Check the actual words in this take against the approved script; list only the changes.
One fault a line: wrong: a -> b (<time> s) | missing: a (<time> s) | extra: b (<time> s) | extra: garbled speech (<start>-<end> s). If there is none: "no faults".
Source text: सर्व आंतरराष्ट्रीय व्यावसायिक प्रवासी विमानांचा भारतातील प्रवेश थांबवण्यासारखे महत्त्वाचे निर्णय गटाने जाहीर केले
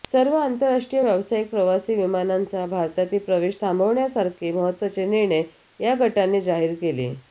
extra: या (5.8 s)